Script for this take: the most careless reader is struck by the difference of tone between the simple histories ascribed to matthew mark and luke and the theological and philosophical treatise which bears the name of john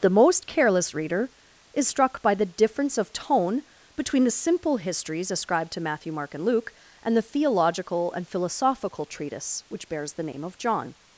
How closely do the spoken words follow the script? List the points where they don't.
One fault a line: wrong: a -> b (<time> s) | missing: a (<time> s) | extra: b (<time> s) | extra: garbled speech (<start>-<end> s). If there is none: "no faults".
no faults